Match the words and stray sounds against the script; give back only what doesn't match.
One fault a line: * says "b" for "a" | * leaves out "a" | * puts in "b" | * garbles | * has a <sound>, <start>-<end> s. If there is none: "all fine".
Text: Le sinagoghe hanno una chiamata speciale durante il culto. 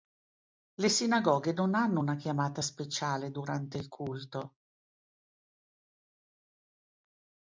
* puts in "non"